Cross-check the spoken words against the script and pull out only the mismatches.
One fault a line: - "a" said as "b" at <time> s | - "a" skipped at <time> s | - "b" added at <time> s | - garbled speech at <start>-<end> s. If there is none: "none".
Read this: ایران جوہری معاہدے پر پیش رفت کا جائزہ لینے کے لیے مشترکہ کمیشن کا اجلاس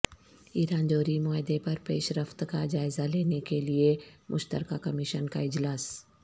none